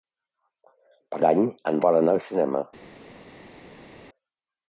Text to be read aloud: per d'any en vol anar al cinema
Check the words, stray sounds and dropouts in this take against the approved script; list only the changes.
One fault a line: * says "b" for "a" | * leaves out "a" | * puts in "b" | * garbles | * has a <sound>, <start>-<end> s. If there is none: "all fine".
all fine